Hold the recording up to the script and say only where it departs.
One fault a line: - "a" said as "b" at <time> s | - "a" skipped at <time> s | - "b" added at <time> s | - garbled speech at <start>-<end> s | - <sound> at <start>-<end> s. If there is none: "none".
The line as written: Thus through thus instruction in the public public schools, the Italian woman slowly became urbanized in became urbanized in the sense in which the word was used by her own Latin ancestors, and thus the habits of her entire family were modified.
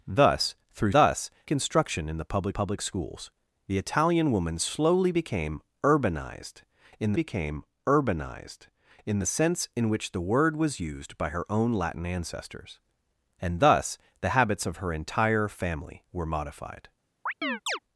- chirp at 17.3-17.8 s